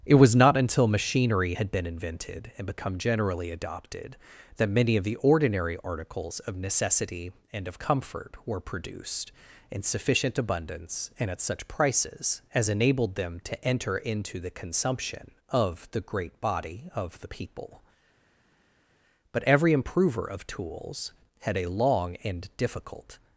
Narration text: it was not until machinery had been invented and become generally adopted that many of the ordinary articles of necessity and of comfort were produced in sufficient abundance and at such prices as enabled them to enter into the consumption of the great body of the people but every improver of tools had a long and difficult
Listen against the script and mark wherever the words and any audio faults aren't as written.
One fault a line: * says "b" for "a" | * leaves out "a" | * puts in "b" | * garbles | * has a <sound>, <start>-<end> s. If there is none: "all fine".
all fine